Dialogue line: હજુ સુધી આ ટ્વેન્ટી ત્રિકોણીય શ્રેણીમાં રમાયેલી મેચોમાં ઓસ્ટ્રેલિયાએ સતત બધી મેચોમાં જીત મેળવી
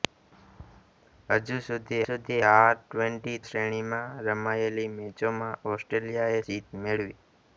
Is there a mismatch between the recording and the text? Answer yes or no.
yes